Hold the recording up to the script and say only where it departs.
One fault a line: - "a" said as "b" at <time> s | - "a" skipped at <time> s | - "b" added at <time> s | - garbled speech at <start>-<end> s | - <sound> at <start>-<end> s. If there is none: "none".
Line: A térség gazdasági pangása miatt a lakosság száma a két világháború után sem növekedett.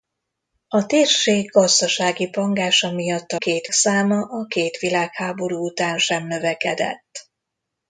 - "lakosság" said as "két" at 3.3 s